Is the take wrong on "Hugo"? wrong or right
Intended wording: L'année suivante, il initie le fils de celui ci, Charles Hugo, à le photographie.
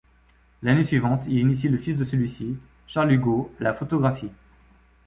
right